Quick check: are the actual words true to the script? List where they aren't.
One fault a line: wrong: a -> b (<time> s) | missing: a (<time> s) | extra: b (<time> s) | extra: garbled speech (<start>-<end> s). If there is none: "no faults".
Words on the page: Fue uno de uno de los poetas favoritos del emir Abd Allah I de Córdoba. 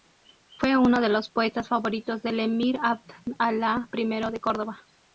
missing: uno de (1.1 s)